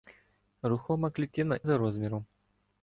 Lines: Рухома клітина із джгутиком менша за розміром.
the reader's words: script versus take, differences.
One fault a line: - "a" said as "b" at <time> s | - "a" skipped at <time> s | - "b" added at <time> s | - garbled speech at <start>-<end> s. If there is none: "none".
- "із джгутиком менша" skipped at 1.6 s